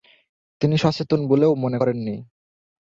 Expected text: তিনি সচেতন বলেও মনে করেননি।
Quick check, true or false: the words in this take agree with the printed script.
true